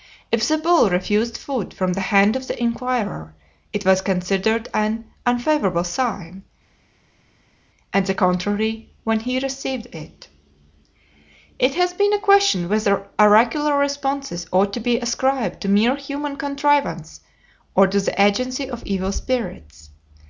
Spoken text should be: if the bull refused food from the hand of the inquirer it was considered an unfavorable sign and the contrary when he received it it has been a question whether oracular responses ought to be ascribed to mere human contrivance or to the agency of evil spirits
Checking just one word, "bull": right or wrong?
right